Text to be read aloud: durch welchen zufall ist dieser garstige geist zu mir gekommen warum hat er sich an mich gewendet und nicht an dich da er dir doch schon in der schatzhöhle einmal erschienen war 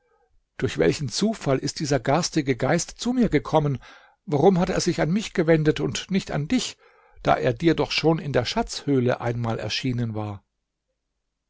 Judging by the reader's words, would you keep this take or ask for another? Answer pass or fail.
pass